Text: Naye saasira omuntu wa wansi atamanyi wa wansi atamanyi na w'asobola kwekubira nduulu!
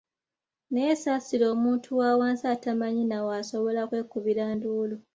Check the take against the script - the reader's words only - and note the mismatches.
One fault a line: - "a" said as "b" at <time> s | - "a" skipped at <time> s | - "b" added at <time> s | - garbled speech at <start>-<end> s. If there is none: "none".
- "wa wansi atamanyi" skipped at 3.0 s